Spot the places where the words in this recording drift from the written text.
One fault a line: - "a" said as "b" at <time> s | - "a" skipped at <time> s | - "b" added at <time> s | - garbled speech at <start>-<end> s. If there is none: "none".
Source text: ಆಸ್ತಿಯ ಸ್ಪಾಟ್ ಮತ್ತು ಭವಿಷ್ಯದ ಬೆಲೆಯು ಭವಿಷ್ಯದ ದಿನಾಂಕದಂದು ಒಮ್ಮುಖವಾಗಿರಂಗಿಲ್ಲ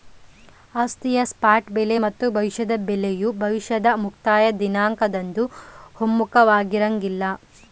- "ಬೆಲೆ" added at 1.7 s
- "ಮುಕ್ತಾಯ" added at 4.0 s